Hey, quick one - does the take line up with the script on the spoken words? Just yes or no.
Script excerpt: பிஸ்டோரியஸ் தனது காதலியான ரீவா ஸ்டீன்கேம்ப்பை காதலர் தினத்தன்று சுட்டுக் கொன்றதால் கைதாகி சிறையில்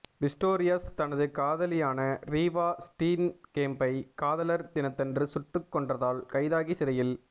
yes